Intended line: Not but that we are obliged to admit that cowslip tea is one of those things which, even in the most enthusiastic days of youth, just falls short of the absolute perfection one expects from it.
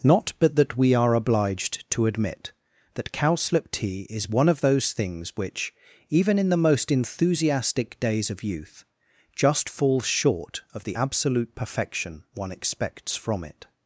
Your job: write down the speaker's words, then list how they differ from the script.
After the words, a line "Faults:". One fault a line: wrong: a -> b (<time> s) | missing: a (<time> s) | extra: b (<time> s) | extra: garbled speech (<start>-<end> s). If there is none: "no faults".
Not but that we are obliged to admit that cowslip tea is one of those things which, even in the most enthusiastic days of youth, just falls short of the absolute perfection one expects from it.
Faults:
no faults